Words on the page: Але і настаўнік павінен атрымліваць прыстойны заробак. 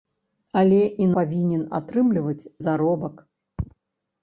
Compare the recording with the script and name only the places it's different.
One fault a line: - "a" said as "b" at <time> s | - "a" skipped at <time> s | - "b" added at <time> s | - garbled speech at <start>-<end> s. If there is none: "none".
- "настаўнік" skipped at 1.1 s
- "прыстойны" skipped at 2.5 s